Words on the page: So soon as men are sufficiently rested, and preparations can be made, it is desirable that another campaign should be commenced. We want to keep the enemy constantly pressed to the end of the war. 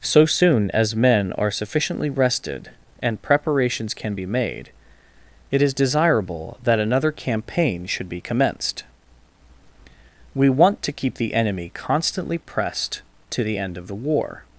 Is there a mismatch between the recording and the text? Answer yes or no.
no